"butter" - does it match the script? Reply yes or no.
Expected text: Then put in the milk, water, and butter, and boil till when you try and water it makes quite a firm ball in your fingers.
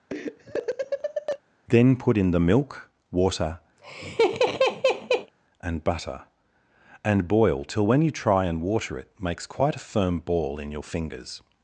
yes